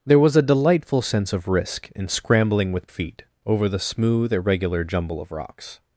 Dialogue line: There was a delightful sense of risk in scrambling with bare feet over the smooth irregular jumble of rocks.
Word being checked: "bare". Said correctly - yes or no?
no